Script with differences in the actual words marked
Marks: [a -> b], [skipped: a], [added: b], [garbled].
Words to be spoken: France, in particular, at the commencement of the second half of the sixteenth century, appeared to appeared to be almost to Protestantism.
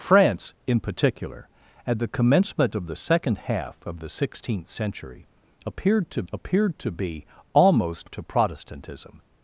France, in particular, at the commencement of the second half of the sixteenth century, appeared to appeared to be almost to Protestantism.